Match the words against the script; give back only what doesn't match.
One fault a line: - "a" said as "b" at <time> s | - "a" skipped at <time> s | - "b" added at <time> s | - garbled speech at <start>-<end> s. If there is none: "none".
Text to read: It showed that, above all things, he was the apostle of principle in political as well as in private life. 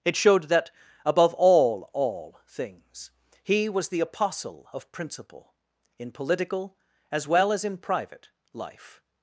- "all" added at 1.9 s